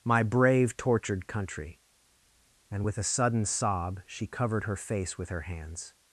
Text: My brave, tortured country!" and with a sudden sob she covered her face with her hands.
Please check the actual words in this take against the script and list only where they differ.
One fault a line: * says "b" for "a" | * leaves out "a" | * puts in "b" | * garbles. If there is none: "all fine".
all fine